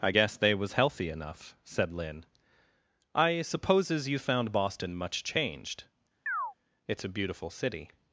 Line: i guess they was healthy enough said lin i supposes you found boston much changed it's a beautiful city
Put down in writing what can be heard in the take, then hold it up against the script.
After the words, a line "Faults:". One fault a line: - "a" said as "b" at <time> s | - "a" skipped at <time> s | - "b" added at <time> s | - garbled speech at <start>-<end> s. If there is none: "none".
i guess they was healthy enough said lin i supposes you found boston much changed it's a beautiful city
Faults:
none